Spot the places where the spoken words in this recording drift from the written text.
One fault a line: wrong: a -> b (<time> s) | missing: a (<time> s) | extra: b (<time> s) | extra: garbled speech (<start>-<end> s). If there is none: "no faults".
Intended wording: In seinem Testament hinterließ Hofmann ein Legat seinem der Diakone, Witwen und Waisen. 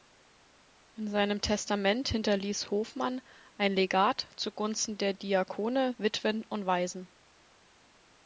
wrong: seinem -> zugunsten (4.4 s)